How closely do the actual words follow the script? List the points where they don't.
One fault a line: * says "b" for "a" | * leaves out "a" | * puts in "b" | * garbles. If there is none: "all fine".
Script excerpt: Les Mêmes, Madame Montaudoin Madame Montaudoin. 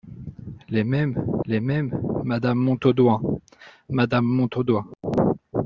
* puts in "les Mêmes"